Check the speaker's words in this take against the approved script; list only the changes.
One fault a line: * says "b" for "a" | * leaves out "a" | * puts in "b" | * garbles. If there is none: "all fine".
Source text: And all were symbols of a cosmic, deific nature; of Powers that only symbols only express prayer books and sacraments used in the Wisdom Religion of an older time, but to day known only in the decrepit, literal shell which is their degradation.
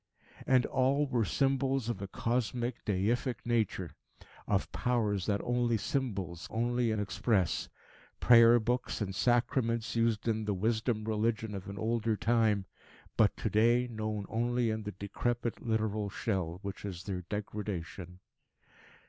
all fine